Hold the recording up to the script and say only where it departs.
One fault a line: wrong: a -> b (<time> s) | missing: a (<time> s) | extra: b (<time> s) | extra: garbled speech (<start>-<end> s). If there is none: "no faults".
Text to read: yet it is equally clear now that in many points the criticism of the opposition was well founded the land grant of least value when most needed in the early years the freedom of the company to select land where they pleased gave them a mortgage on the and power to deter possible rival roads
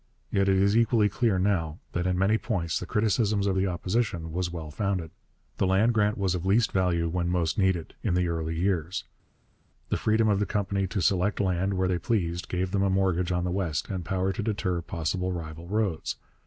extra: was (6.2 s)
extra: west (13.5 s)